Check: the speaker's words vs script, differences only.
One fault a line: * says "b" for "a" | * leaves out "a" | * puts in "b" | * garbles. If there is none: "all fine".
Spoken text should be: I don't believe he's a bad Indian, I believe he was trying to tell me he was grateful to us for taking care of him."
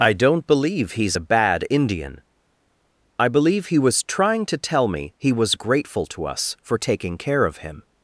all fine